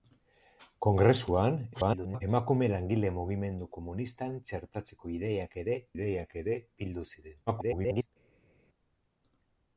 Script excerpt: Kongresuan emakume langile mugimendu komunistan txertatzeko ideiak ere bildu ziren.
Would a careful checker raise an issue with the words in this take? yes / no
yes